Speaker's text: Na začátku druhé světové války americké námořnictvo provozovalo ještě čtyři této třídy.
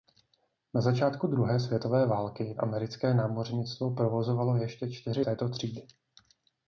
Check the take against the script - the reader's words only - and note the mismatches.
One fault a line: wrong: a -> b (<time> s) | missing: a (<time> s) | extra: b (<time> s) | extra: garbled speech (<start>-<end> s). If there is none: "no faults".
no faults